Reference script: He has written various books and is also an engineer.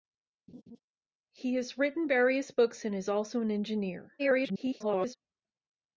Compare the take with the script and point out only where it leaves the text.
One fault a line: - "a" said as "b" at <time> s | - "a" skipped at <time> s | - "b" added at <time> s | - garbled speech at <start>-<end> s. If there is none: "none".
- garbled speech at 4.2-5.2 s